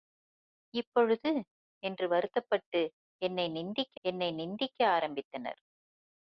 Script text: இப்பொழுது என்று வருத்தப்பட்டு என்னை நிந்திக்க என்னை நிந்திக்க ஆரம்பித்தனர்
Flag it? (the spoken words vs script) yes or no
no